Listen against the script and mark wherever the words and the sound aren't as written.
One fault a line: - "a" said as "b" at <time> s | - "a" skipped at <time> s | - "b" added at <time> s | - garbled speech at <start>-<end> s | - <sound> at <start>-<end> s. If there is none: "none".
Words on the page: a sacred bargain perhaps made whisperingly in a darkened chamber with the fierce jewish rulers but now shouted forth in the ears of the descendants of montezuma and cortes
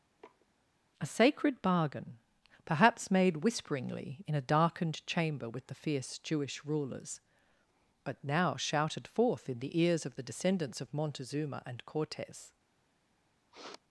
- sniff at 0.2-0.5 s
- sniff at 13.5-13.8 s